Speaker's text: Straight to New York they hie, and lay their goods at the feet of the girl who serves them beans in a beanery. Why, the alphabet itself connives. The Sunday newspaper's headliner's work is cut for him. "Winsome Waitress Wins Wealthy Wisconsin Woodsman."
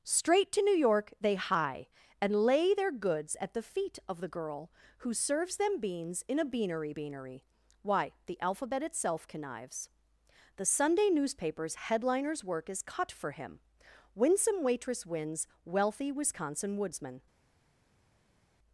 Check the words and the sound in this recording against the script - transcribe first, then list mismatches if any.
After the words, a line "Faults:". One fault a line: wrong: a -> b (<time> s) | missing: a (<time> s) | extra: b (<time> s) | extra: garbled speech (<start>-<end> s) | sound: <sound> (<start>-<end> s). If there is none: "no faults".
Straight to New York they hie, and lay their goods at the feet of the girl who serves them beans in a beanery beanery. Why, the alphabet itself connives. The Sunday newspaper's headliner's work is cut for him. "Winsome Waitress Wins Wealthy Wisconsin Woodsman."
Faults:
extra: beanery (6.9 s)